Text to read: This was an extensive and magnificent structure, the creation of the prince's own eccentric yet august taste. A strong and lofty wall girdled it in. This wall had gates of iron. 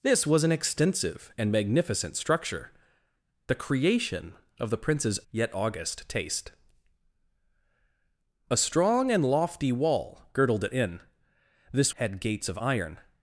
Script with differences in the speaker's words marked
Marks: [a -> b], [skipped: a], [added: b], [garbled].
This was an extensive and magnificent structure, the creation of the prince's [skipped: own eccentric] yet august taste. A strong and lofty wall girdled it in. This [skipped: wall] had gates of iron.